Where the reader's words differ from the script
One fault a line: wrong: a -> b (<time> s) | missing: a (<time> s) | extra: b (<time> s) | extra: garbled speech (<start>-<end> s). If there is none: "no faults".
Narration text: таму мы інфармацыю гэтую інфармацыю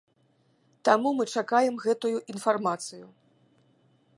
wrong: інфармацыю -> чакаем (1.4 s)